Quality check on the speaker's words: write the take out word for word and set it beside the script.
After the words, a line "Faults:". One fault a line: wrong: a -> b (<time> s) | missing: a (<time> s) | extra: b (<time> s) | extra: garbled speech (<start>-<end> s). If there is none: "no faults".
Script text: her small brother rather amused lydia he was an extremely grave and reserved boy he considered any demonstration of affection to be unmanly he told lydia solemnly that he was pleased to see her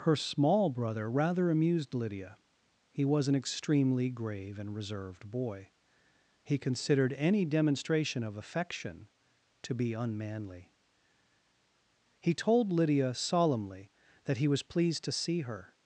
her small brother rather amused lydia he was an extremely grave and reserved boy he considered any demonstration of affection to be unmanly he told lydia solemnly that he was pleased to see her
Faults:
no faults